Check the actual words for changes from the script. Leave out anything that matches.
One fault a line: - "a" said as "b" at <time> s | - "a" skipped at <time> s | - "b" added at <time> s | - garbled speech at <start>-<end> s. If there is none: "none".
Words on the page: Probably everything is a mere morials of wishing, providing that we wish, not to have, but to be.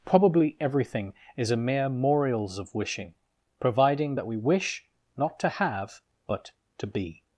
none